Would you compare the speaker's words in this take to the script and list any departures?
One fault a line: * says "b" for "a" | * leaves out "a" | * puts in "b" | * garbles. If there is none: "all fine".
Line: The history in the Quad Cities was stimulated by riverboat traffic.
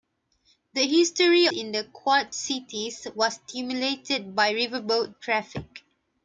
all fine